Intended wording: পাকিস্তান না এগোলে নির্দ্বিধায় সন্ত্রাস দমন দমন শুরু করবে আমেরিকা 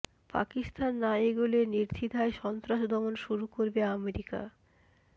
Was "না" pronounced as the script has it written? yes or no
yes